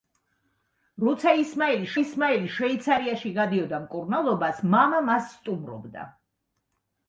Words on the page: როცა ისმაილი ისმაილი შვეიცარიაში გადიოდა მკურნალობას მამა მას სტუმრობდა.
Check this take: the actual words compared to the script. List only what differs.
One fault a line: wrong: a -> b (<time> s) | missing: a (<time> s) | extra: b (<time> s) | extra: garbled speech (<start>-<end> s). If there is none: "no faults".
no faults